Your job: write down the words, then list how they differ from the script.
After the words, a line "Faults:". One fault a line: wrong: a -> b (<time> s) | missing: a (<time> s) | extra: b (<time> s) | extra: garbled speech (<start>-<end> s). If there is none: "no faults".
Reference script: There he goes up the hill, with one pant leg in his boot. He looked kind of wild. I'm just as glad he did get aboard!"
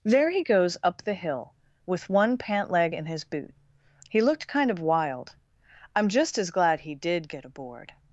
There he goes up the hill, with one pant leg in his boot. He looked kind of wild. I'm just as glad he did get aboard!"
Faults:
no faults